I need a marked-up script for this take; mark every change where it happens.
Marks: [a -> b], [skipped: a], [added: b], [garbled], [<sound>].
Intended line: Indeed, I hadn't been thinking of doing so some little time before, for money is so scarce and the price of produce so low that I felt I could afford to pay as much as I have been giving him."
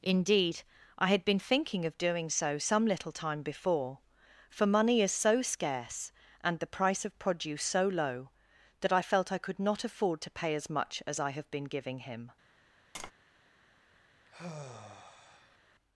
Indeed, I [hadn't -> had] been thinking of doing so some little time before, for money is so scarce and the price of produce so low that I felt I could [added: not] afford to pay as much as I have been giving him." [tap] [sigh]